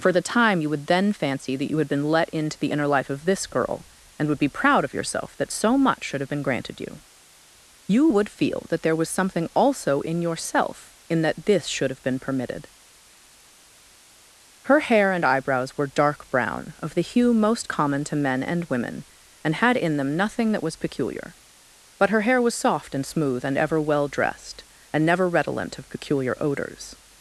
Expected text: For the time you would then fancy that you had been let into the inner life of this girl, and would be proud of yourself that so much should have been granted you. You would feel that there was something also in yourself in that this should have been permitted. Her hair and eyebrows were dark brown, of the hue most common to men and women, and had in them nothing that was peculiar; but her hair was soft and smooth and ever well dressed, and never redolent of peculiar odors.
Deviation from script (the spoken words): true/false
false